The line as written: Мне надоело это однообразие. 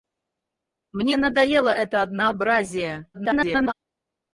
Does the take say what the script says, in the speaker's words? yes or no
no